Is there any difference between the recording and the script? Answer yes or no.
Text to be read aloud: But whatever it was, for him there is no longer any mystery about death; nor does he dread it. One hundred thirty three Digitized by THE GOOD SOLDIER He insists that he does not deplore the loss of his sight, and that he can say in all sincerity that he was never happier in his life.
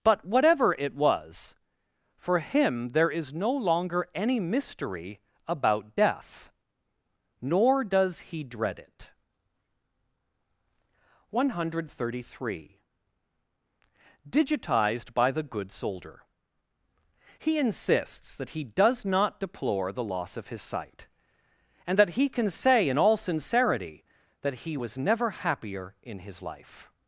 no